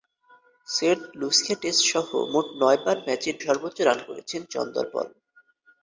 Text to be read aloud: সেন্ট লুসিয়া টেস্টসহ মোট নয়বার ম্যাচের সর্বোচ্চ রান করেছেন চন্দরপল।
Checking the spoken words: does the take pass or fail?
pass